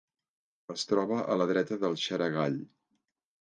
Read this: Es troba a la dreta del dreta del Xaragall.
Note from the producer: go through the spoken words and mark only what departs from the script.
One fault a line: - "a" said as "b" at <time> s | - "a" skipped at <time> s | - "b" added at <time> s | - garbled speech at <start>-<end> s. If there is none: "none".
- "dreta del" skipped at 2.0 s